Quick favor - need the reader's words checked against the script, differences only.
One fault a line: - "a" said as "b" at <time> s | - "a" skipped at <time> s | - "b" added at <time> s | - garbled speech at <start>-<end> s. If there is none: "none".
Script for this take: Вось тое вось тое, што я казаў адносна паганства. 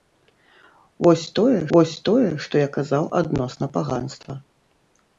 none